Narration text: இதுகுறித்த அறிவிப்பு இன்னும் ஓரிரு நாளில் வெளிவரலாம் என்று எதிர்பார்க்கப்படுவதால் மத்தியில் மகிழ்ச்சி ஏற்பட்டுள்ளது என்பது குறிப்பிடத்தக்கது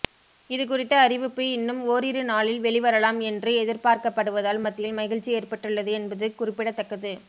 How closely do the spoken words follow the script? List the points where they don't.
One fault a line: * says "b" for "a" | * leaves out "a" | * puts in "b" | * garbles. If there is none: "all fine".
all fine